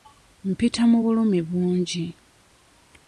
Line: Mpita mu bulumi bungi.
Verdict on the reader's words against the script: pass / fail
pass